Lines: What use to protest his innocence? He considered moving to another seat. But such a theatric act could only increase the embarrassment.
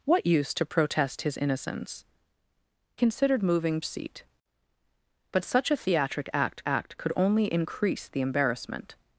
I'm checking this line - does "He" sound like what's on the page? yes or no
no